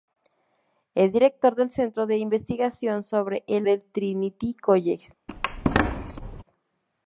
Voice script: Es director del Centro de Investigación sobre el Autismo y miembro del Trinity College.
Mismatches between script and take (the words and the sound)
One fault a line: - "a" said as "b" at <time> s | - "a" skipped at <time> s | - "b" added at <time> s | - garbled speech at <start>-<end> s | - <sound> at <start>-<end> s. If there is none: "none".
- "Autismo y miembro" skipped at 3.7 s
- squeak at 5.3-6.4 s